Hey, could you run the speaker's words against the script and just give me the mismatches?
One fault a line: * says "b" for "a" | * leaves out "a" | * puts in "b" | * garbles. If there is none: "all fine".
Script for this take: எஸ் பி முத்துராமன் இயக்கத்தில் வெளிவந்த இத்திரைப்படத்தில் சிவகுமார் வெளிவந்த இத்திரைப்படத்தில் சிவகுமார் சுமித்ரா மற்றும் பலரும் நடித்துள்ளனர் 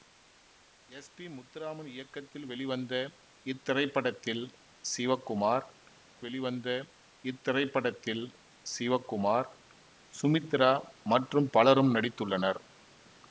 all fine